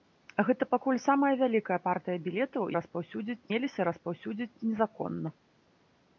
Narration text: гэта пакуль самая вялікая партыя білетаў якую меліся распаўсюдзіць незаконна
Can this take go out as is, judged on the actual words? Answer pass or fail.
fail